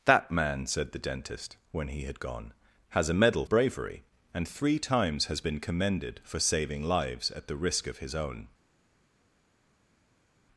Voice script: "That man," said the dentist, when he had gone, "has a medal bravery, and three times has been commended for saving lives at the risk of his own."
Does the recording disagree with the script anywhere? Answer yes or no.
no